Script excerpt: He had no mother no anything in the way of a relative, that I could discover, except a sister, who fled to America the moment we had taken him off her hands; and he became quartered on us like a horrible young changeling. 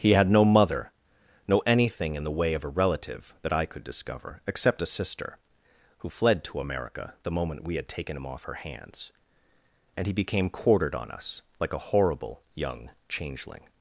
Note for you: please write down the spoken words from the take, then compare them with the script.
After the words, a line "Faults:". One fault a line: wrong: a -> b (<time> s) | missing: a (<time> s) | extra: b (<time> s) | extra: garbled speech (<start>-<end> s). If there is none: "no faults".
He had no mother no anything in the way of a relative, that I could discover, except a sister, who fled to America the moment we had taken him off her hands; and he became quartered on us like a horrible young changeling.
Faults:
no faults